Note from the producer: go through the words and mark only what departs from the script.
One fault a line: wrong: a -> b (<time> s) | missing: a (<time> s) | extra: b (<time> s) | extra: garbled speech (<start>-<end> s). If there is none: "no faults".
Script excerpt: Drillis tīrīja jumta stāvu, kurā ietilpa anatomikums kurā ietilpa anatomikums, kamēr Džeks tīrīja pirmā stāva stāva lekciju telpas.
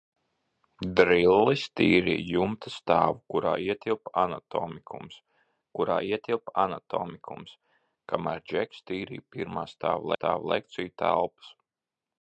no faults